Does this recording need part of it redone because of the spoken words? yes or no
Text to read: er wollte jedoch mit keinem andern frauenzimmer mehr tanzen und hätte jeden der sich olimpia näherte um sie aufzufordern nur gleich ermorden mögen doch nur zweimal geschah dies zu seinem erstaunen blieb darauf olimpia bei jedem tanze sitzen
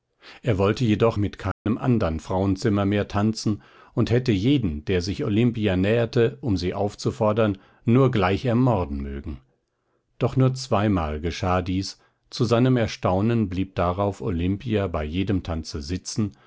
no